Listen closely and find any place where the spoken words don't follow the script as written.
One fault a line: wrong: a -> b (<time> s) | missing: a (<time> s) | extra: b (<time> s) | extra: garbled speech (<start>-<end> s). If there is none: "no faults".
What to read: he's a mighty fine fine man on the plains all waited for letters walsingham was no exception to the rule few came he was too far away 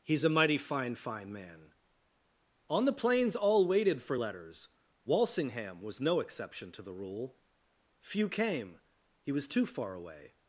no faults